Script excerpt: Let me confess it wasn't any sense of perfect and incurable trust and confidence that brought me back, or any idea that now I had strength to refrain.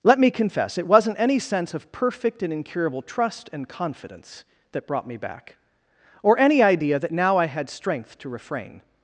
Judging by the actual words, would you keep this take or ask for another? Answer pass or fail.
pass